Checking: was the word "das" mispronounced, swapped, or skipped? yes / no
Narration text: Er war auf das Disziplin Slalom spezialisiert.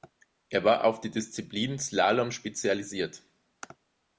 yes